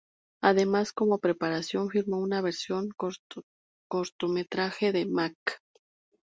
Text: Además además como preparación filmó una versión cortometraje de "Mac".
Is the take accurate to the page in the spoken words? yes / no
no